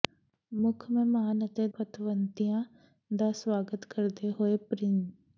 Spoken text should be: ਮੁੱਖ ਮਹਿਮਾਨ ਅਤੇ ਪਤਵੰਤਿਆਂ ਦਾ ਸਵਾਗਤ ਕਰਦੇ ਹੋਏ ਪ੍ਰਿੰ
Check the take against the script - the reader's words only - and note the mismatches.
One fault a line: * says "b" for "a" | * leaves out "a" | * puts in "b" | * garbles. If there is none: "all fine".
all fine